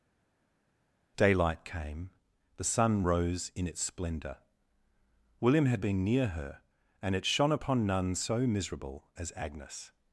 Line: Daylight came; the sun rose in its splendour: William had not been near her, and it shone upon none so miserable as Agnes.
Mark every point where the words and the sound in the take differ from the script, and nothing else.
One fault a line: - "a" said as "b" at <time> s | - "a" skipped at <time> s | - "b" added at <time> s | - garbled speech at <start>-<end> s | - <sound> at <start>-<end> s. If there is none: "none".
- "not" skipped at 5.9 s